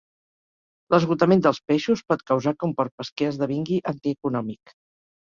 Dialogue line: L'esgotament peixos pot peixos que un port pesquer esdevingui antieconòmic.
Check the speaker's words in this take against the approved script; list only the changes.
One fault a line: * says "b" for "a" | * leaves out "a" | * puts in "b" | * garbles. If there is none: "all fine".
* puts in "dels"
* says "causar" for "peixos"